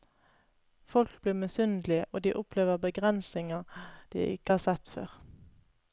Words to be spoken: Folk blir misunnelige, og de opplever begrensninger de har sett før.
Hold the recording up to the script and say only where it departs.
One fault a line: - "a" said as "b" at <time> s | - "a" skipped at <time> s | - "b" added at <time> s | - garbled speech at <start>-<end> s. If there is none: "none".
- "ikke" added at 4.2 s